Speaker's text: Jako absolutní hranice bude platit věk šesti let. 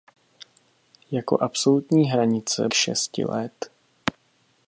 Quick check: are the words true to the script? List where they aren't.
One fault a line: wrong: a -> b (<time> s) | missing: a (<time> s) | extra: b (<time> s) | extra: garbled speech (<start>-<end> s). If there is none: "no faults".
missing: bude platit věk (2.7 s)